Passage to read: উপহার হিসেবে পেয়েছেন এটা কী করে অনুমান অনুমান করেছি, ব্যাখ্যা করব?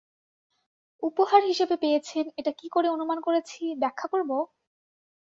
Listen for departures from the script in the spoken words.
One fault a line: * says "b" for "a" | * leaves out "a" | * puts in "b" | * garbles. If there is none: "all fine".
* leaves out "অনুমান"